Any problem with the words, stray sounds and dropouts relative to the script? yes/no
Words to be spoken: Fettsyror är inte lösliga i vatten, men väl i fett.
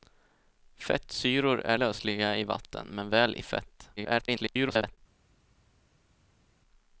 yes